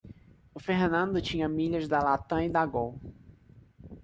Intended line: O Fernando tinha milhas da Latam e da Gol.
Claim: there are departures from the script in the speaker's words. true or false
false